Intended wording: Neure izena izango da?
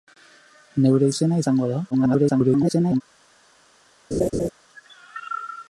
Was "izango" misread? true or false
false